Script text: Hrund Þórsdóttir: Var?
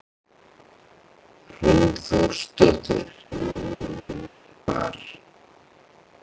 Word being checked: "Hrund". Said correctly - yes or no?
yes